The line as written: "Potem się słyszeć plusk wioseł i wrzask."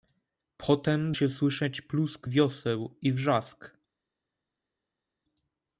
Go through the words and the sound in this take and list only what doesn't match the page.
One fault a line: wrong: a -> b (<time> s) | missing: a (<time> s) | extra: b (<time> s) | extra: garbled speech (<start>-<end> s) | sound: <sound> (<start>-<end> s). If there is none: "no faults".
no faults